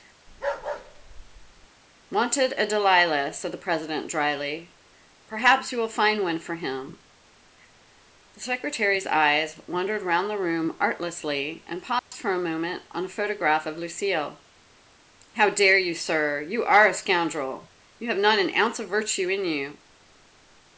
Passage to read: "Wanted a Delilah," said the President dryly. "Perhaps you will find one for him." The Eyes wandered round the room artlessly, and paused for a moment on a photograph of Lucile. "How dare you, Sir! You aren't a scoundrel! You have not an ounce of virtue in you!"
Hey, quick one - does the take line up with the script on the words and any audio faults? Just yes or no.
no